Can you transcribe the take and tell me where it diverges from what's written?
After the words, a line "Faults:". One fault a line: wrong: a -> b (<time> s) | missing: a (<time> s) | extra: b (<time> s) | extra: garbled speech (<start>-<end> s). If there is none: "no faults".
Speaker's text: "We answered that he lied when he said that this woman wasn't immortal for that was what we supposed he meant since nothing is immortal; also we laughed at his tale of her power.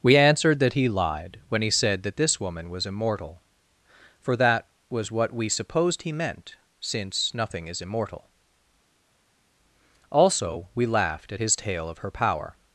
"We answered that he lied when he said that this woman was immortal for that was what we supposed he meant since nothing is immortal; also we laughed at his tale of her power.
Faults:
wrong: wasn't -> was (2.7 s)